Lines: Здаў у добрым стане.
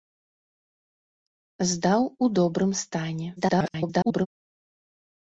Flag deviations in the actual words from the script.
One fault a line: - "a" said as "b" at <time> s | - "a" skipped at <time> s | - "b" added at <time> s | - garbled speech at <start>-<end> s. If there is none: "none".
- garbled speech at 3.4-4.3 s